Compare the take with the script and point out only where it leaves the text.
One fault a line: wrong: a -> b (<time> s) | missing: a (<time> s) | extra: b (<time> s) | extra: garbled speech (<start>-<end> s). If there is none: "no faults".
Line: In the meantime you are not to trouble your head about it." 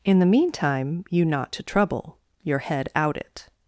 missing: are (1.2 s)
wrong: about -> out (2.9 s)